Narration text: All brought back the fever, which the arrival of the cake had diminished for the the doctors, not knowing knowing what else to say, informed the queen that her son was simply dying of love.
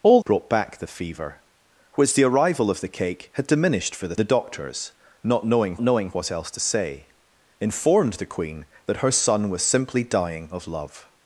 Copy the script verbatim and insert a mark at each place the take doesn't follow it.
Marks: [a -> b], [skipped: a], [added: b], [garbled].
All brought back the fever, which the arrival of the cake had diminished for the the doctors, not knowing knowing what else to say, informed the queen that her son was simply dying of love.